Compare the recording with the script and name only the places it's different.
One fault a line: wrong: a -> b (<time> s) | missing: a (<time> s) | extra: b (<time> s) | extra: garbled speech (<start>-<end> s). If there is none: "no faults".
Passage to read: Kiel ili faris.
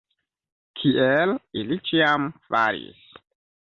extra: ĉiam (1.9 s)